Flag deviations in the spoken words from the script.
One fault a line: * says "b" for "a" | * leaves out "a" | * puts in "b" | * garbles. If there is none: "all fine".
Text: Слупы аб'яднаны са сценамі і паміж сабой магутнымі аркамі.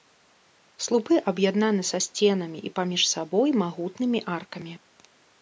all fine